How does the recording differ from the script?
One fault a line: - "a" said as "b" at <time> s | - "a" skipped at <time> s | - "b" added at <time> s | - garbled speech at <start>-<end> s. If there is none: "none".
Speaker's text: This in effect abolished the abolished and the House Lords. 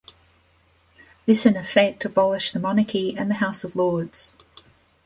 - "abolished" said as "monarchy" at 2.6 s
- "of" added at 3.6 s